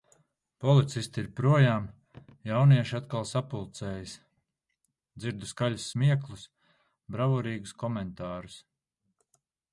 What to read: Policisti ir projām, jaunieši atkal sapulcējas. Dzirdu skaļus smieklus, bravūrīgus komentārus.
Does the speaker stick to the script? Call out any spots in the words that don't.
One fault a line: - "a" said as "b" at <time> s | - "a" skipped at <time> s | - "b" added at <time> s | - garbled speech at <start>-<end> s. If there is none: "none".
none